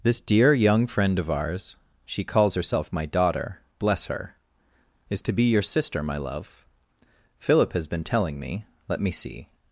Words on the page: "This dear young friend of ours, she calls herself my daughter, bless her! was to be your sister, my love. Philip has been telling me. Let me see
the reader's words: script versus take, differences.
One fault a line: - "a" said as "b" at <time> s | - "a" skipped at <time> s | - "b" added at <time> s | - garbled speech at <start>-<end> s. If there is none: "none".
- "was" said as "is" at 5.1 s